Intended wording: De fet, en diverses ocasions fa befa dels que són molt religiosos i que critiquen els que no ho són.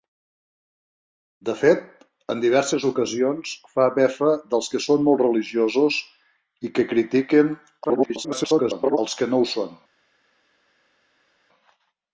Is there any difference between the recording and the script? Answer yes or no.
yes